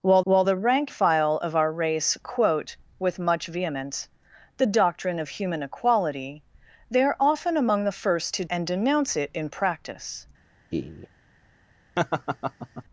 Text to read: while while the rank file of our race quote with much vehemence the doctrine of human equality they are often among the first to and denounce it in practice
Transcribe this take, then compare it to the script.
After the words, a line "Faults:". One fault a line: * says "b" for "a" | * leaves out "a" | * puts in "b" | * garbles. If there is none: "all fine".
while while the rank file of our race quote with much vehemence the doctrine of human equality they are often among the first to and denounce it in practice
Faults:
all fine